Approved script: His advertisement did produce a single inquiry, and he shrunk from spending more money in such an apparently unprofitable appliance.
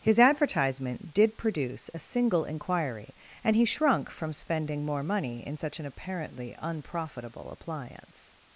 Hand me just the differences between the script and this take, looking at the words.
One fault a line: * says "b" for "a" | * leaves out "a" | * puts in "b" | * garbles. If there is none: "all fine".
all fine